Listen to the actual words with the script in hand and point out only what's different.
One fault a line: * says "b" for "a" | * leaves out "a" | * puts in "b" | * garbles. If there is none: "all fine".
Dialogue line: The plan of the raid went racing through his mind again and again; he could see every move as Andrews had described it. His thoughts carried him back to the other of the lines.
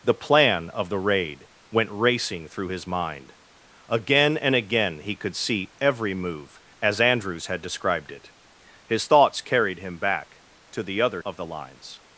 all fine